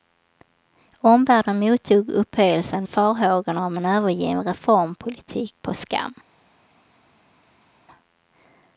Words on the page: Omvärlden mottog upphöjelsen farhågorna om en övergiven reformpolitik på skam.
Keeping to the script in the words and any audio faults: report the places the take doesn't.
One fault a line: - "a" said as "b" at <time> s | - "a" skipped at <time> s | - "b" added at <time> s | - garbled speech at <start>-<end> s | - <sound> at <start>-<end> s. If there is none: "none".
none